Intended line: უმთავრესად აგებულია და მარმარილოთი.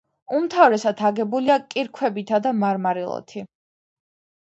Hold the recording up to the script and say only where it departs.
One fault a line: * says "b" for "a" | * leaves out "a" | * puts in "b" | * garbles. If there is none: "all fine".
* puts in "კირქვებითა"